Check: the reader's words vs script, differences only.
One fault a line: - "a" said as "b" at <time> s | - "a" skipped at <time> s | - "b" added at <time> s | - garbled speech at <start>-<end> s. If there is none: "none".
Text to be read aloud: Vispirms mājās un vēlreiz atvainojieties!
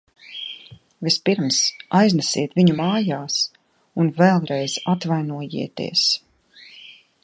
- "aiznesiet viņu" added at 2.0 s